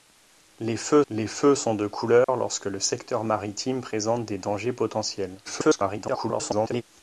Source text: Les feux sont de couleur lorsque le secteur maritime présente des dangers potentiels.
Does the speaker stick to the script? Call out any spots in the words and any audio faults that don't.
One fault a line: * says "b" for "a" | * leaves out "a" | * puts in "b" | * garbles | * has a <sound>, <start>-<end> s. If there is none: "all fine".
* puts in "les feux"
* has a dropout, 2.2-2.3 s
* garbles